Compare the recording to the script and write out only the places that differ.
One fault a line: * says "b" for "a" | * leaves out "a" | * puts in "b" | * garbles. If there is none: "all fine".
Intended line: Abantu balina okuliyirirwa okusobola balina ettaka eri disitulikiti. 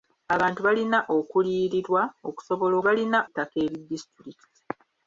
all fine